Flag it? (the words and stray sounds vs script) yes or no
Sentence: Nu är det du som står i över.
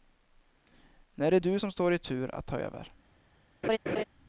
yes